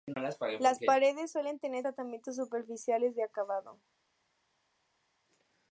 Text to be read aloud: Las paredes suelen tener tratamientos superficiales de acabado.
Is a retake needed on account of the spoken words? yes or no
no